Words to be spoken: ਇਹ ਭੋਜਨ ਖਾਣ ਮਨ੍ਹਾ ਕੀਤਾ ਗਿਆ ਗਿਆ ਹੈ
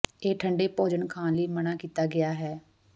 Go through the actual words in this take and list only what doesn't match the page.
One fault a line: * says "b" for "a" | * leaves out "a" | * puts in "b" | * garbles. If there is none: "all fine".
* puts in "ਠੰਡੇ"
* puts in "ਲਈ"
* leaves out "ਗਿਆ"